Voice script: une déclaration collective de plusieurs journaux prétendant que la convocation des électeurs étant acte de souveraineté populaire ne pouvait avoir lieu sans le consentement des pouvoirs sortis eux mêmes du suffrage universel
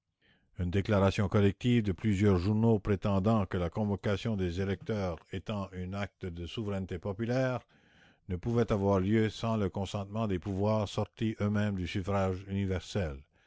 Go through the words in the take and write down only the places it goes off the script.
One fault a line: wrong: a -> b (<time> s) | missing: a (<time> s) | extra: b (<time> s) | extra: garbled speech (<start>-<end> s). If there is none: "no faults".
extra: un (5.7 s)